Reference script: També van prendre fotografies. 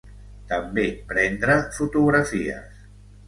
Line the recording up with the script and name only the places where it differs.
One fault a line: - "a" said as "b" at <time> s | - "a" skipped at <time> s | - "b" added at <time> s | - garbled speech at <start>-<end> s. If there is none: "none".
- "van" skipped at 0.8 s